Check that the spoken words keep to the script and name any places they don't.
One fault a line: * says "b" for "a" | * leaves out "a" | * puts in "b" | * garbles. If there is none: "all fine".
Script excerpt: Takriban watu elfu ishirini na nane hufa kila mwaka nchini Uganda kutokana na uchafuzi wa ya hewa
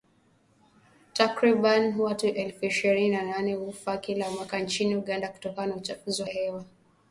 all fine